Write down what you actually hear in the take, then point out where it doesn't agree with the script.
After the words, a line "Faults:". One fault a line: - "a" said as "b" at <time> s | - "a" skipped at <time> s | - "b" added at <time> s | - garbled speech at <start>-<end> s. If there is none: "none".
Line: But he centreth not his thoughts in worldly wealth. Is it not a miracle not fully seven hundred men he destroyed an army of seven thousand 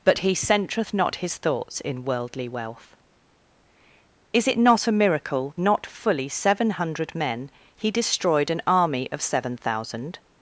But he centreth not his thoughts in worldly wealth. Is it not a miracle not fully seven hundred men he destroyed an army of seven thousand
Faults:
none